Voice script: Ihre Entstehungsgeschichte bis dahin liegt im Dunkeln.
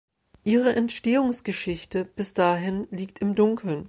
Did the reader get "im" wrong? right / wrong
right